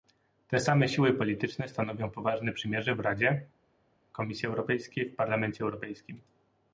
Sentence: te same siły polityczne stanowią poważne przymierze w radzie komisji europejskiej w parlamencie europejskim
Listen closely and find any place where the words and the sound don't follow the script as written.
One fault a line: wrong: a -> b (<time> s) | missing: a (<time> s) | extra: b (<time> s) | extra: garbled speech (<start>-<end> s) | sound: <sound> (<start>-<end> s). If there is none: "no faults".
no faults